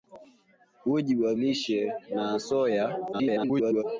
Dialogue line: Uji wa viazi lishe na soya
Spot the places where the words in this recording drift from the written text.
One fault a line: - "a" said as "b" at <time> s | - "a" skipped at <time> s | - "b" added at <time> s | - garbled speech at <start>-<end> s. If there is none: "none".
- "viazi" skipped at 1.4 s
- garbled speech at 3.1-3.8 s